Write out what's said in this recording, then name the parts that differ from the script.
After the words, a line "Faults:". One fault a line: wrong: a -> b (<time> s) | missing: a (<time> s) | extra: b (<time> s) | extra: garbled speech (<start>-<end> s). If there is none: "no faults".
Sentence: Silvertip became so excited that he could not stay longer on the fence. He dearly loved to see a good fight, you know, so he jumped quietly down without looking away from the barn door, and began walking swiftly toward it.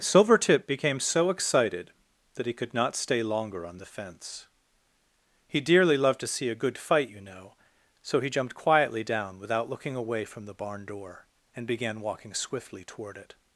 Silvertip became so excited that he could not stay longer on the fence. He dearly loved to see a good fight, you know, so he jumped quietly down without looking away from the barn door, and began walking swiftly toward it.
Faults:
no faults